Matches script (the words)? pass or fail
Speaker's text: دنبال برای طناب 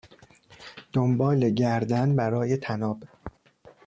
fail